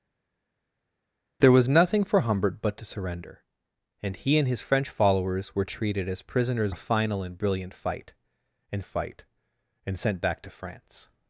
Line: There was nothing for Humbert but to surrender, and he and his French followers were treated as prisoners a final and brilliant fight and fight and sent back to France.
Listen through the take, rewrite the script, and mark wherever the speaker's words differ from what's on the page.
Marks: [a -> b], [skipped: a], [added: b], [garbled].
There was nothing for Humbert but to surrender, and he and his French followers were treated as prisoners a final and brilliant fight and fight and sent back to France.